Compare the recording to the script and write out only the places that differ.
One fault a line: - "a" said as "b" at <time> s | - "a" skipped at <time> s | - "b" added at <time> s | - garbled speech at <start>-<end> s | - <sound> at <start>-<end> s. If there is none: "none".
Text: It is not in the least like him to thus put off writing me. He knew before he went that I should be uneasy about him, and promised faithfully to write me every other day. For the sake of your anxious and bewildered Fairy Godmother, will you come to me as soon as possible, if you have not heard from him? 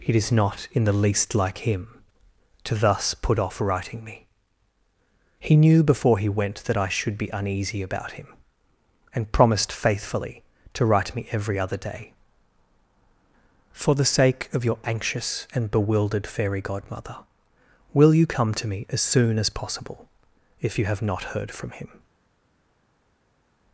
none